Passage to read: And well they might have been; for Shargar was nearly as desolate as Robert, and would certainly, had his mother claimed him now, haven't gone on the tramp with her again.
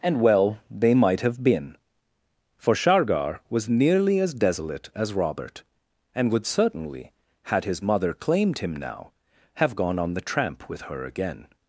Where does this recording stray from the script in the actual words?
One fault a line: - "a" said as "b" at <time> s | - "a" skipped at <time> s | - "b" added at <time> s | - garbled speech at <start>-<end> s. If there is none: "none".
- "haven't" said as "have" at 9.6 s